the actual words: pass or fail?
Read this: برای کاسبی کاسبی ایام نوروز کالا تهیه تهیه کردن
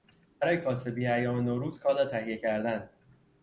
fail